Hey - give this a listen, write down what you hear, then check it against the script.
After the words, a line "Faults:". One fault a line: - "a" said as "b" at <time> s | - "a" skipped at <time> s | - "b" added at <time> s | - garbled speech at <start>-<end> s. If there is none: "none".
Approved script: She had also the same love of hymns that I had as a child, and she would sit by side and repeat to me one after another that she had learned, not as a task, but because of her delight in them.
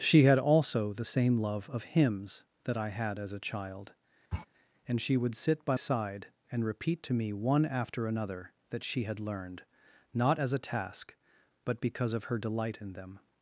She had also the same love of hymns that I had as a child, and she would sit by side and repeat to me one after another that she had learned, not as a task, but because of her delight in them.
Faults:
none